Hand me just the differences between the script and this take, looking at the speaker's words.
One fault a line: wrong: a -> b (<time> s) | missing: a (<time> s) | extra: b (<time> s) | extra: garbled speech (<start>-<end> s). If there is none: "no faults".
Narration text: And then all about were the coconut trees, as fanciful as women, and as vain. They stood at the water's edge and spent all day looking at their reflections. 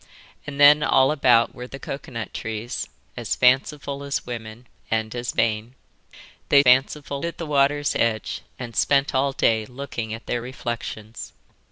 wrong: stood -> fanciful (6.6 s)